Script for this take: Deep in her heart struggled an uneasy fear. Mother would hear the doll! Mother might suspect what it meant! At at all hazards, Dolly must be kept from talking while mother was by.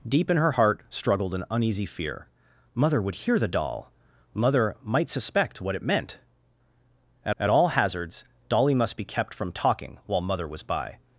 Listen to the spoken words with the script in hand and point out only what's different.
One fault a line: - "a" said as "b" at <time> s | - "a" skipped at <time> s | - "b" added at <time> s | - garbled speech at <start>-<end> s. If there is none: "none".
none